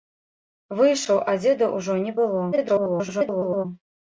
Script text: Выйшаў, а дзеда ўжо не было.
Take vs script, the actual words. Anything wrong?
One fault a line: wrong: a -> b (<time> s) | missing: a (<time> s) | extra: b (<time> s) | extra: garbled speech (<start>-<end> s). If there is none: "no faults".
extra: garbled speech (2.5-3.7 s)